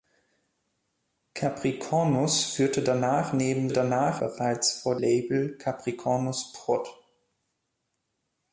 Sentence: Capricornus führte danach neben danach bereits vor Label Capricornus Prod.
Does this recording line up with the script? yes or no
yes